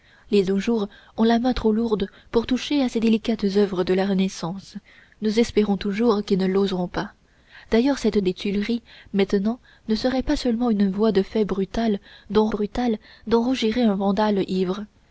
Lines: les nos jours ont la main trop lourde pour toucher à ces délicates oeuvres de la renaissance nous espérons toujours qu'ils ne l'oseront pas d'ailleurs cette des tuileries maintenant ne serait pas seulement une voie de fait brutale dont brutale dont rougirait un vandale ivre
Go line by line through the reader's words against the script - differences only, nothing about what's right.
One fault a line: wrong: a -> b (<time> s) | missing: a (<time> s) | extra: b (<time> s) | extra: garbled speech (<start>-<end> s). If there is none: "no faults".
no faults